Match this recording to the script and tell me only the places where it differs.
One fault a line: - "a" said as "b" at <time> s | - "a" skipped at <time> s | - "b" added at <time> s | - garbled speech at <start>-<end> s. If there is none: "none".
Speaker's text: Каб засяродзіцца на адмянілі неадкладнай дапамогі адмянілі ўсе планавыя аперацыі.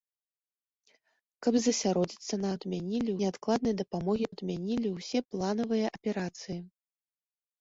none